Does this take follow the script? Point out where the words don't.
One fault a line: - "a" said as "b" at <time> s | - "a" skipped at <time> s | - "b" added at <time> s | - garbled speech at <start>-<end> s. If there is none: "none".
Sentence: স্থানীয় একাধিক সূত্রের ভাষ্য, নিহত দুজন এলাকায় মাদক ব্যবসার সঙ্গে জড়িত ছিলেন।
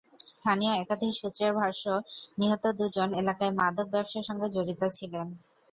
none